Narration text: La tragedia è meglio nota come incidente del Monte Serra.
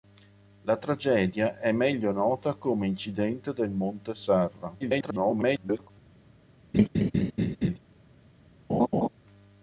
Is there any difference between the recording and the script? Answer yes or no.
yes